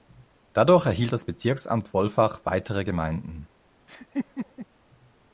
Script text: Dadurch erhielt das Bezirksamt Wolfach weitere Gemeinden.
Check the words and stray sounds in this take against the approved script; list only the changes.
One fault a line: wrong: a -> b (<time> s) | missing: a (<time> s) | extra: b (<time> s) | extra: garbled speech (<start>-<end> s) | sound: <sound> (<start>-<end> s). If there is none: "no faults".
sound: laugh (3.9-4.7 s)